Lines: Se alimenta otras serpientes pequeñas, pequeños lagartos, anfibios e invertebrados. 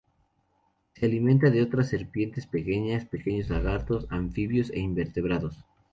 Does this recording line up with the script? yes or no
no